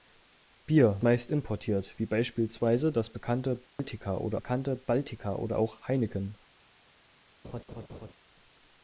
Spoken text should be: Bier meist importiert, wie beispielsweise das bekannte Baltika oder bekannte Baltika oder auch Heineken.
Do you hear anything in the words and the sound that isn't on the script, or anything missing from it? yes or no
yes